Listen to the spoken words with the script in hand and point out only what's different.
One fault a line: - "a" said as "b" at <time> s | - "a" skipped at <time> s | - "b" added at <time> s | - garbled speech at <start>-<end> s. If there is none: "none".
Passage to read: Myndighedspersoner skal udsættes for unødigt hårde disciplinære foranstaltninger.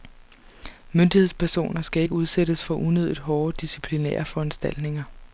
- "ikke" added at 2.0 s